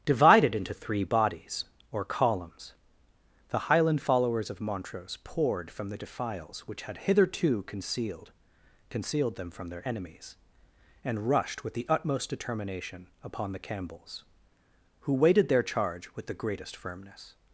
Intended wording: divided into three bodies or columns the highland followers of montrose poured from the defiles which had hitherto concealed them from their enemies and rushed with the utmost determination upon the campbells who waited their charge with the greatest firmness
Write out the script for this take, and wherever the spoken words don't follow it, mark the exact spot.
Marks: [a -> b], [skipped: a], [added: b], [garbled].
divided into three bodies or columns the highland followers of montrose poured from the defiles which had hitherto concealed [added: concealed] them from their enemies and rushed with the utmost determination upon the campbells who waited their charge with the greatest firmness